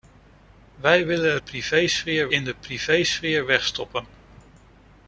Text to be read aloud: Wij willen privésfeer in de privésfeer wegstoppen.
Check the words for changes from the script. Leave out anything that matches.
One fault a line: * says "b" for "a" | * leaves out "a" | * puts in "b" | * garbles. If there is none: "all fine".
all fine